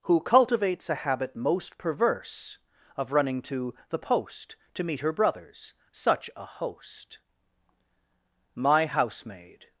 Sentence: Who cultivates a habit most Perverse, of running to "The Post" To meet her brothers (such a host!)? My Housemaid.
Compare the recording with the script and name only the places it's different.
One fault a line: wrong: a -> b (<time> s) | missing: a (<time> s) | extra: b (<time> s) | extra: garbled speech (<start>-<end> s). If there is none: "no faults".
no faults